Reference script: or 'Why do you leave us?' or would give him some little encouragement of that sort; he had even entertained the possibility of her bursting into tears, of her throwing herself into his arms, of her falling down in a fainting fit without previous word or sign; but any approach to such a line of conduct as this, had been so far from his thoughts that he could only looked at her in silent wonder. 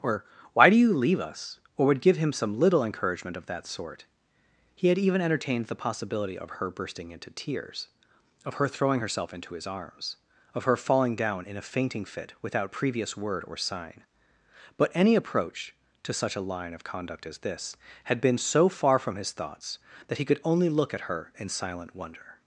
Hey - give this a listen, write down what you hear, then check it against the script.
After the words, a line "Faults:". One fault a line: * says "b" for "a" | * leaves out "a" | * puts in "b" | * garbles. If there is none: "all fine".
or 'Why do you leave us?' or would give him some little encouragement of that sort; he had even entertained the possibility of her bursting into tears, of her throwing herself into his arms, of her falling down in a fainting fit without previous word or sign; but any approach to such a line of conduct as this, had been so far from his thoughts that he could only look at her in silent wonder.
Faults:
* says "look" for "looked"